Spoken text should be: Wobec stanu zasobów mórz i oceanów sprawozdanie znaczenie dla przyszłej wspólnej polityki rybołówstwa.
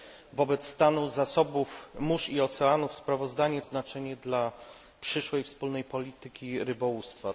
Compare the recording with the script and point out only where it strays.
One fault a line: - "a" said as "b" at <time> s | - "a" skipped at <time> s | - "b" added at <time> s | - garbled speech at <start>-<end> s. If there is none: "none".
none